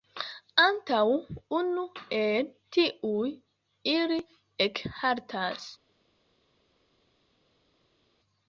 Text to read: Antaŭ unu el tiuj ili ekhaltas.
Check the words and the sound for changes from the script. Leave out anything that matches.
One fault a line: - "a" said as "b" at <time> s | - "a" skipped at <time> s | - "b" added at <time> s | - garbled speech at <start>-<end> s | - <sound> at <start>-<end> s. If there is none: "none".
none